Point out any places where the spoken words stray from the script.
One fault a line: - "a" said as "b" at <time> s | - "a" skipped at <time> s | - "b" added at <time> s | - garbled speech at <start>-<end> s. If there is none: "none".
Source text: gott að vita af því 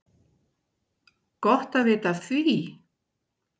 none